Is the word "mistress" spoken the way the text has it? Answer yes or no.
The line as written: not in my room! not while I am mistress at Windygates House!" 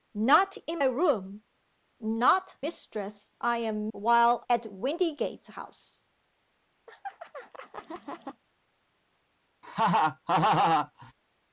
no